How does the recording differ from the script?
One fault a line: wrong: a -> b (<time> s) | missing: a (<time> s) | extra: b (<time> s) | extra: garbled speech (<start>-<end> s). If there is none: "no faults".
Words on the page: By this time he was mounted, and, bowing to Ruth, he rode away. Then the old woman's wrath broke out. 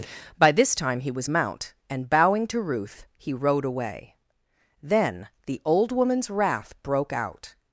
wrong: mounted -> mount (1.3 s)